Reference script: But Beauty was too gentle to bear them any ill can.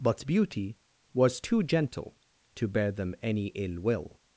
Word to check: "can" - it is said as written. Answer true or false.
false